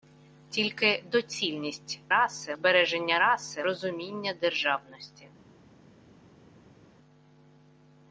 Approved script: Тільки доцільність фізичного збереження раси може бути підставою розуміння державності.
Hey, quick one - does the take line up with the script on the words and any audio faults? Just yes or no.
no